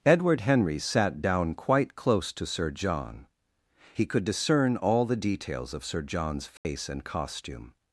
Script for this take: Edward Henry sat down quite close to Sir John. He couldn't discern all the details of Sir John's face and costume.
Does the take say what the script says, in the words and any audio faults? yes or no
no